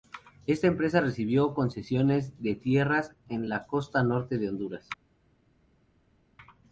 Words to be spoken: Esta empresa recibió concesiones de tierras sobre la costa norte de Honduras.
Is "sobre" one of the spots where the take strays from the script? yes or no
yes